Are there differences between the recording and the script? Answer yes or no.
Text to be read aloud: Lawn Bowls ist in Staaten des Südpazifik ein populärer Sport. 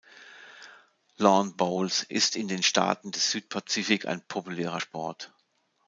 yes